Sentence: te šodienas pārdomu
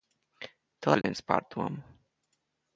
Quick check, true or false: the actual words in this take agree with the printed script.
true